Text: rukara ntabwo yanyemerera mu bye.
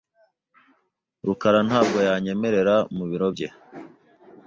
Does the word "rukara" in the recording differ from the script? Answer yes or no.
no